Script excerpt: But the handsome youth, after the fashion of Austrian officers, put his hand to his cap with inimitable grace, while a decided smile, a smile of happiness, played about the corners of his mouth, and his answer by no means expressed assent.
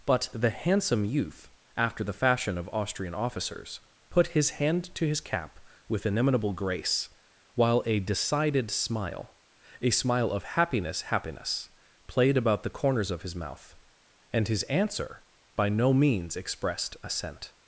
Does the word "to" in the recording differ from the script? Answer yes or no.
no